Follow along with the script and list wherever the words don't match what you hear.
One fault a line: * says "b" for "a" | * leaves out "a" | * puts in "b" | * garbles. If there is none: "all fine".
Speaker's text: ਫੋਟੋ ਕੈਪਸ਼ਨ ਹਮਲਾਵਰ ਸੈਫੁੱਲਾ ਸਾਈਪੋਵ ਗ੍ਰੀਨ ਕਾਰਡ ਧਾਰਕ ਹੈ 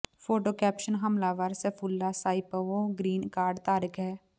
all fine